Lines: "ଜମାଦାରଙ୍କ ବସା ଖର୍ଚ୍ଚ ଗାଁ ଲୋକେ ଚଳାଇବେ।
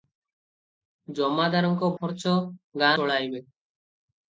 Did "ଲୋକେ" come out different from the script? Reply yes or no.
yes